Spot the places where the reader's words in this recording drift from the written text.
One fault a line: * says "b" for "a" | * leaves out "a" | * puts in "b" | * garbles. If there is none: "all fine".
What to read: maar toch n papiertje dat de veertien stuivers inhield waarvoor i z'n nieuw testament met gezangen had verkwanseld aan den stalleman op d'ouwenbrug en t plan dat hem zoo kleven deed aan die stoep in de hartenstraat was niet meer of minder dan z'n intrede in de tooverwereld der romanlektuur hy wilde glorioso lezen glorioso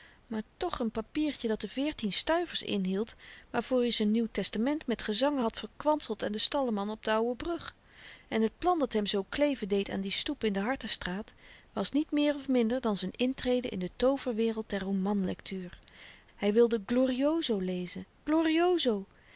all fine